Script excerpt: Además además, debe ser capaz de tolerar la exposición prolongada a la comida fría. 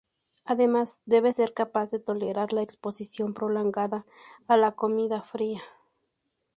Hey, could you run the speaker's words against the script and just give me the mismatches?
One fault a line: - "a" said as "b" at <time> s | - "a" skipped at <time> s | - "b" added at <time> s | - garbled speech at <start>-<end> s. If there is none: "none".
- "además" skipped at 1.0 s